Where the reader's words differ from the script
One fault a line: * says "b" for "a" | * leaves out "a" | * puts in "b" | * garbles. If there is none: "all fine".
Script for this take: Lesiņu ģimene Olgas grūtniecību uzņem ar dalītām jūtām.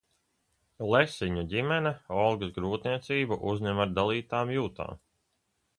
all fine